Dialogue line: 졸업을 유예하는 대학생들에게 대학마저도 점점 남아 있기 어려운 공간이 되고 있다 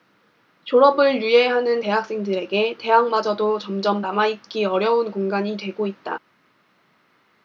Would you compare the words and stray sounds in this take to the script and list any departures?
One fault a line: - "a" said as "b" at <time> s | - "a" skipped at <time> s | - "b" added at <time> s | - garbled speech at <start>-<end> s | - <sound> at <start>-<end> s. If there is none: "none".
none